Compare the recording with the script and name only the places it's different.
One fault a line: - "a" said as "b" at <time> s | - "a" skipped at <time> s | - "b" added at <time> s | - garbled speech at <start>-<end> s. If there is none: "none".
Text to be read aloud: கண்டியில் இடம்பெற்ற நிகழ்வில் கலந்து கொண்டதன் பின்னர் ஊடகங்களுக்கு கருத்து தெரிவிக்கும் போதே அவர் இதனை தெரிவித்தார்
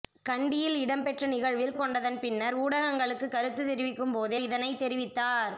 - "கலந்து" skipped at 1.8 s
- "அவர்" skipped at 4.4 s